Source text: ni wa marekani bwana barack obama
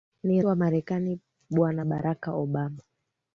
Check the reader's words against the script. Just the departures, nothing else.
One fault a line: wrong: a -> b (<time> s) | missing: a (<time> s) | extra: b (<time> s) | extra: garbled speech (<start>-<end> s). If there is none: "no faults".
no faults